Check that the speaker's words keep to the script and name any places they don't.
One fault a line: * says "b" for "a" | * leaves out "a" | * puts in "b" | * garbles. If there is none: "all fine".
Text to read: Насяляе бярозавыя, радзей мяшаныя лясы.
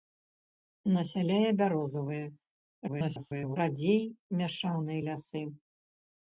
* garbles